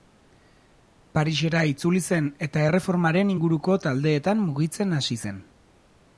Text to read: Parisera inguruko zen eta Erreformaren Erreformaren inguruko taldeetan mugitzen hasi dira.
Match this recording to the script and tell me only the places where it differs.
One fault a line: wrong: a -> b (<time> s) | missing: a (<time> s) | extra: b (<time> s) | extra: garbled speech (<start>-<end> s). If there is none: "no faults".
wrong: inguruko -> itzuli (1.7 s)
missing: Erreformaren (3.4 s)
wrong: dira -> zen (5.2 s)